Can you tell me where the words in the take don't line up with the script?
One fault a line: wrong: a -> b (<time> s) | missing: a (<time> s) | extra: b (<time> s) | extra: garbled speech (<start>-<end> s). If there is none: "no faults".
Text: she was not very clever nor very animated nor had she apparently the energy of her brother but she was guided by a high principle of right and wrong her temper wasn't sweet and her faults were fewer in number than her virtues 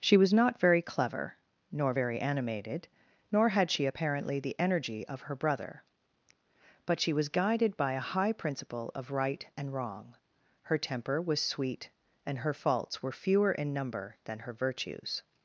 wrong: wasn't -> was (11.2 s)